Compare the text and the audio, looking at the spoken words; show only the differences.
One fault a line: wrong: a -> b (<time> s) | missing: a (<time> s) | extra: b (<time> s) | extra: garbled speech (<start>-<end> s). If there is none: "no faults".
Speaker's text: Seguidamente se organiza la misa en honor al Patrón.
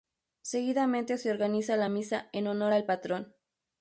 no faults